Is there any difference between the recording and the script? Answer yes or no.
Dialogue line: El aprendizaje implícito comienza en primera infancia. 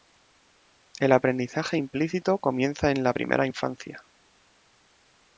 yes